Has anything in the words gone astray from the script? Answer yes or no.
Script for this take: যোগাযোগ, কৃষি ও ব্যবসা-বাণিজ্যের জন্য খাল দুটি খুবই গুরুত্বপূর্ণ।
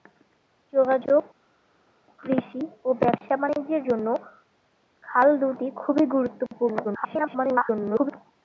yes